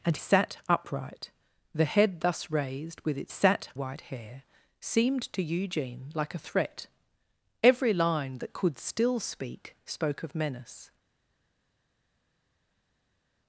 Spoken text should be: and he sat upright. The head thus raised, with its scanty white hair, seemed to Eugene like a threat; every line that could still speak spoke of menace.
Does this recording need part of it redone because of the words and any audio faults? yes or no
yes